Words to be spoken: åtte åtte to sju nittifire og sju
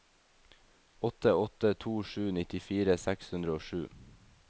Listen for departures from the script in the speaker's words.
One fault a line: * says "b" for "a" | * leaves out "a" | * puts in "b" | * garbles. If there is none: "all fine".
* puts in "seks hundre"